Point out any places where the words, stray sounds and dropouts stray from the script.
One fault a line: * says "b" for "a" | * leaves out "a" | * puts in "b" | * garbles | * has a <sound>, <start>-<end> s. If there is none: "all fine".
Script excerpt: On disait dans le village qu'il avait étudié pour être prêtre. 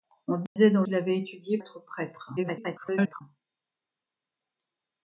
* has a dropout, 0.5-0.6 s
* leaves out "le village"
* leaves out "pour"
* garbles